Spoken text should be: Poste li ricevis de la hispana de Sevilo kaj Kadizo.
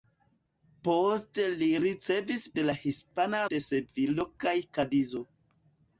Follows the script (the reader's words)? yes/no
yes